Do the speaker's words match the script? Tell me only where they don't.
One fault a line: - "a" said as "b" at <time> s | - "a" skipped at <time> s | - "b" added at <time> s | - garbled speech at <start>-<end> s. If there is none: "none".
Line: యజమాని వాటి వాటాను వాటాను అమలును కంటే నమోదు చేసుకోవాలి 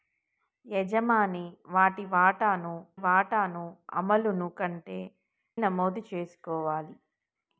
none